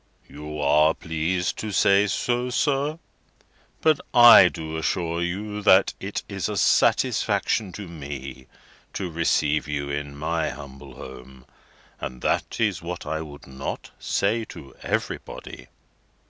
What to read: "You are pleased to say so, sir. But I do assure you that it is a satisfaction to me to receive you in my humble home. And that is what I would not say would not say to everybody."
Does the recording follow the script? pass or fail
fail